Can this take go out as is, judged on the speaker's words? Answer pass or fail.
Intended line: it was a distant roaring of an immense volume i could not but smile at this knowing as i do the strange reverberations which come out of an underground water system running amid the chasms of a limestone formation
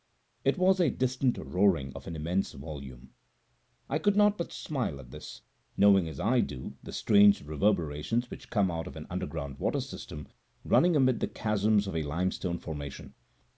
pass